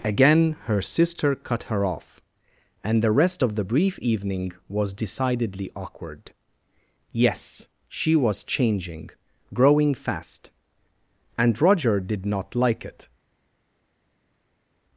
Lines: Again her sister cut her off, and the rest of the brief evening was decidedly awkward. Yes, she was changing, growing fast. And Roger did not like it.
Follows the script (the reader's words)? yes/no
yes